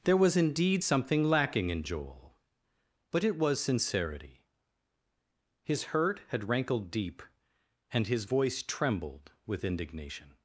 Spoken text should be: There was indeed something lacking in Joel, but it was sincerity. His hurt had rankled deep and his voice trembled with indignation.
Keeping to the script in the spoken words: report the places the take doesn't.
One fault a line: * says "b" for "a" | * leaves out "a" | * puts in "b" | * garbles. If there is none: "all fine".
all fine